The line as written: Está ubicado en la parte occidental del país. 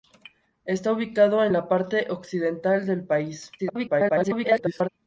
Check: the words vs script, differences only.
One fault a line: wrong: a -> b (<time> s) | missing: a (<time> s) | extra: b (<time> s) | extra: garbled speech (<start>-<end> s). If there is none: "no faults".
extra: garbled speech (3.6-4.9 s)